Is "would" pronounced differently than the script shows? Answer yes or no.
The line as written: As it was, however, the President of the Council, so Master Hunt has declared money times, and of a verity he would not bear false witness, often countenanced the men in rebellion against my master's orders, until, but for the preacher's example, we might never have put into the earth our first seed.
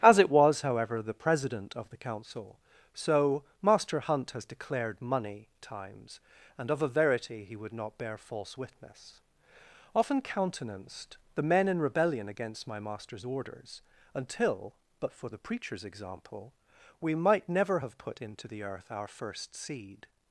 no